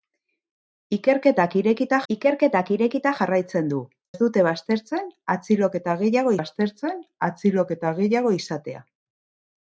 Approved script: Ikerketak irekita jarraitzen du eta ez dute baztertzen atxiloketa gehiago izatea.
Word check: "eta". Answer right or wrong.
wrong